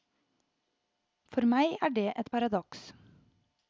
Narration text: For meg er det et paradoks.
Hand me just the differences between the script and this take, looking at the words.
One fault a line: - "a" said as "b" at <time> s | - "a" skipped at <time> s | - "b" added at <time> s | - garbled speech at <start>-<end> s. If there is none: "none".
none